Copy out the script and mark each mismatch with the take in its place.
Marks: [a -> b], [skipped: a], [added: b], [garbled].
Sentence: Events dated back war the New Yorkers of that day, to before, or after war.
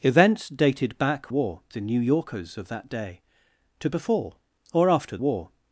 Events dated back war the New Yorkers of that day, to before, or after war.